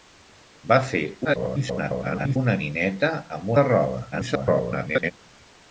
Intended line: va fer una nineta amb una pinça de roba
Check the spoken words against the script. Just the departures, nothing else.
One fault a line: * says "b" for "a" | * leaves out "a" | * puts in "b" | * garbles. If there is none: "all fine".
* garbles
* leaves out "una pinça"
* garbles